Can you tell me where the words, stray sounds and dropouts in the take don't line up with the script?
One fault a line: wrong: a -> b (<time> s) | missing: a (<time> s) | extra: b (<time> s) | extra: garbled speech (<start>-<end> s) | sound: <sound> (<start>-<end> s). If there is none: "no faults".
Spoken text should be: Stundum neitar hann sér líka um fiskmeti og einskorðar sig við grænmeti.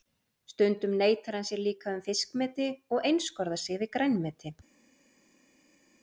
no faults